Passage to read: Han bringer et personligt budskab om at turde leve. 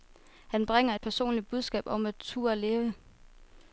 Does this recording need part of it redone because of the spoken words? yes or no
no